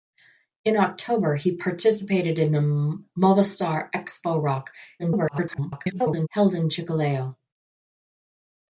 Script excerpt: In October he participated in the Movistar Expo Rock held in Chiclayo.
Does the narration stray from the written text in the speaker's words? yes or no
yes